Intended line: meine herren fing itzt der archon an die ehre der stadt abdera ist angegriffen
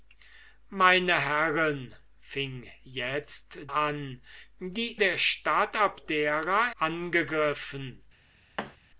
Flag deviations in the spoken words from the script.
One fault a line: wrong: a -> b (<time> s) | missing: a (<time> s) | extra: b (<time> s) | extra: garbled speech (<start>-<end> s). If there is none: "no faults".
missing: der archon (3.6 s)
missing: ehre (5.0 s)
missing: ist (6.7 s)